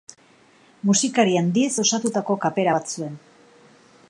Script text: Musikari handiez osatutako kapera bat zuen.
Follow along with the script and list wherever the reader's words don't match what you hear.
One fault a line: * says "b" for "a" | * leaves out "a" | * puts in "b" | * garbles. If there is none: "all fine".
all fine